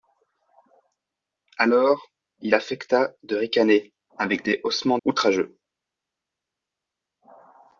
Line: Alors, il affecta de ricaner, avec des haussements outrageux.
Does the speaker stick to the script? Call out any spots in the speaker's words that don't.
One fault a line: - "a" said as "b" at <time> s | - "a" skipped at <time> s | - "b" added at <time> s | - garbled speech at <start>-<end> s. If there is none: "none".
none